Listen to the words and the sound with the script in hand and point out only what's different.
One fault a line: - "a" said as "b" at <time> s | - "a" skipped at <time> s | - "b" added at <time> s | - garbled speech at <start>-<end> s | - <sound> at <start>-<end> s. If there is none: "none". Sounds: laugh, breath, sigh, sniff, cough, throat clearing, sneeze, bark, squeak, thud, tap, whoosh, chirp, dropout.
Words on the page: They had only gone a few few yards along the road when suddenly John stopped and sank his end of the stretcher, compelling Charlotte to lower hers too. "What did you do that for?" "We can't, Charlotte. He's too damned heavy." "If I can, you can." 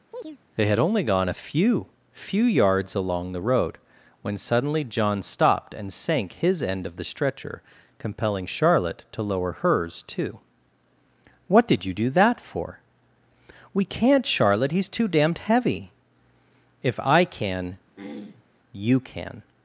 - chirp at 0.1-0.4 s
- throat clearing at 17.9-18.5 s